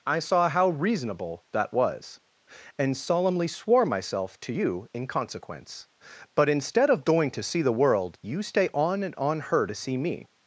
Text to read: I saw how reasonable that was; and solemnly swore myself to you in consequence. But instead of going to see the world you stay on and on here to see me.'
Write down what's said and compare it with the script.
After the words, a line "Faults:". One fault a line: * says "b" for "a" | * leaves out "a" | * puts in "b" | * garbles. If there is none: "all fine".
I saw how reasonable that was; and solemnly swore myself to you in consequence. But instead of going to see the world you stay on and on her to see me.'
Faults:
* says "her" for "here"